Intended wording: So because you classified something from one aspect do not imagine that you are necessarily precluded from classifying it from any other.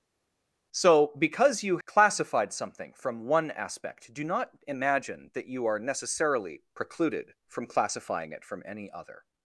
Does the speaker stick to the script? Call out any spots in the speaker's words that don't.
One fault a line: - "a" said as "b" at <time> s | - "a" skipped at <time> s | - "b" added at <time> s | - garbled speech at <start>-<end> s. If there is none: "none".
none